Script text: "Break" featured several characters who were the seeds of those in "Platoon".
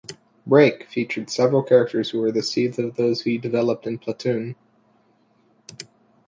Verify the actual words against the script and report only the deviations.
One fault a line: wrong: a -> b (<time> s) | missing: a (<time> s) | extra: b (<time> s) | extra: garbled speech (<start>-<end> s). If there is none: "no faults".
extra: he developed (3.2 s)